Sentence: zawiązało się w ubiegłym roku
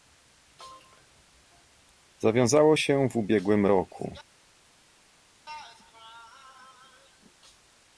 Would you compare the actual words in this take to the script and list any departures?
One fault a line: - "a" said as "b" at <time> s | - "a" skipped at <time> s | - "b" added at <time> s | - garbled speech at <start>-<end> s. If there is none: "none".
none